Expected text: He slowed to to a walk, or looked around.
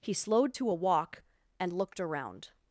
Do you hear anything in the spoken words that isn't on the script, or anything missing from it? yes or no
yes